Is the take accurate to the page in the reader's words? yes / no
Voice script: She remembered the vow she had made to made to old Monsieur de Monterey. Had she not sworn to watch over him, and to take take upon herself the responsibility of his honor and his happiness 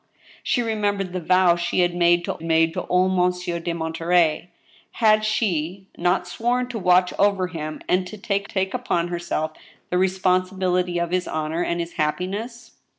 yes